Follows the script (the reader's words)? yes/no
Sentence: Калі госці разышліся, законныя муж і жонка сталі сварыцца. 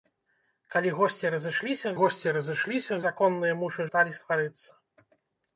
no